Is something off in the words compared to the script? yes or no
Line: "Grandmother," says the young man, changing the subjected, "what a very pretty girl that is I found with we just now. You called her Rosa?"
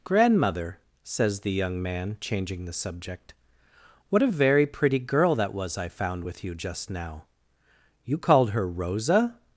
yes